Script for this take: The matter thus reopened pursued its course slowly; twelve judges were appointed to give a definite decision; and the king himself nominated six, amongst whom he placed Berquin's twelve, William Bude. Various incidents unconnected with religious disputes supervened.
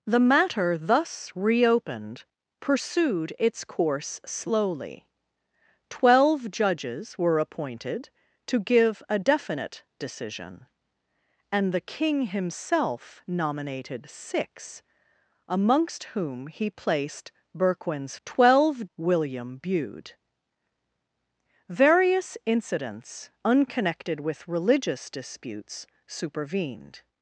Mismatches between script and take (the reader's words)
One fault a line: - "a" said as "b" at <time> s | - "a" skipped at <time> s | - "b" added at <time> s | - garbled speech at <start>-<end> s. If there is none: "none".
none